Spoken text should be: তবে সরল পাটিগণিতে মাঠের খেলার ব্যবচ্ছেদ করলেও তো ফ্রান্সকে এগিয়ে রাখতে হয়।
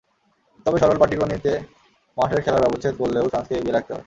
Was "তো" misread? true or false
true